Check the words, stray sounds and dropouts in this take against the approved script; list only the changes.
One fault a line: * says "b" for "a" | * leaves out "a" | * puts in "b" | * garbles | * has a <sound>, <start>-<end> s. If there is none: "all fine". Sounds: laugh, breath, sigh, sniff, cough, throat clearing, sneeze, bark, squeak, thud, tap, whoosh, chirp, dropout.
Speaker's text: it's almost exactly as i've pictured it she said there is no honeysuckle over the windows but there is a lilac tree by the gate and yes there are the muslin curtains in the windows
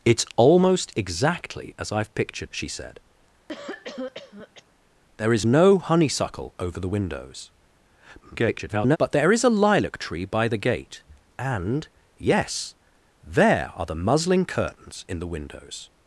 * leaves out "it"
* has a cough, 3.5-4.6 s
* garbles